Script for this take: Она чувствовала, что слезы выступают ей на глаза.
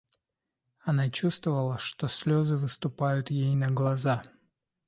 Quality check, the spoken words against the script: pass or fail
pass